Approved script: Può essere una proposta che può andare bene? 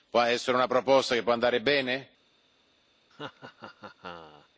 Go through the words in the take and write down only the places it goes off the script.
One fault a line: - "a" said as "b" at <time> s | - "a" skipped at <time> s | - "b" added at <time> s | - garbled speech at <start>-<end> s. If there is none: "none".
none